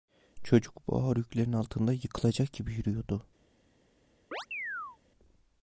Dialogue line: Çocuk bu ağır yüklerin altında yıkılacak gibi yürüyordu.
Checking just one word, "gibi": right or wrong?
right